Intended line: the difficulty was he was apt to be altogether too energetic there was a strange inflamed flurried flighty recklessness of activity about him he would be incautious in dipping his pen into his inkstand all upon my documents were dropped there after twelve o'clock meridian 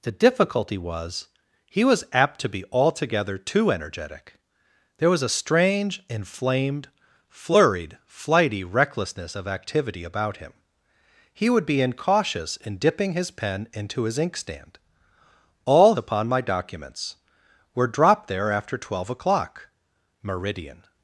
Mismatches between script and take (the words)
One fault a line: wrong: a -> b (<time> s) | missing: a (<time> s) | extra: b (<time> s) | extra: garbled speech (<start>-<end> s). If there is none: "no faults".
no faults